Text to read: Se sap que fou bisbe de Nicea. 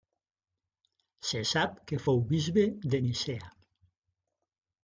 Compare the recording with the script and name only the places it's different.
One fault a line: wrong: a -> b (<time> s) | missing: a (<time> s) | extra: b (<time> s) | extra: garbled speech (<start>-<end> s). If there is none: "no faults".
no faults